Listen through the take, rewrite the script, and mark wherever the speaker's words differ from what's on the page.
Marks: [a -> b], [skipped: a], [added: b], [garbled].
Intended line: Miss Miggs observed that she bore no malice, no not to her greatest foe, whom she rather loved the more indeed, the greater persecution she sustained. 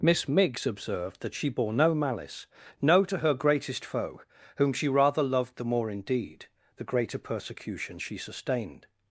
Miss Miggs observed that she bore no malice, no [skipped: not] to her greatest foe, whom she rather loved the more indeed, the greater persecution she sustained.